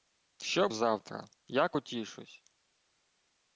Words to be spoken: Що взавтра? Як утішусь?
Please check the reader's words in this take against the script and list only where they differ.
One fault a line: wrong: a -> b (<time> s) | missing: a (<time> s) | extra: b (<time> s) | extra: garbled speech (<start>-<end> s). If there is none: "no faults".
no faults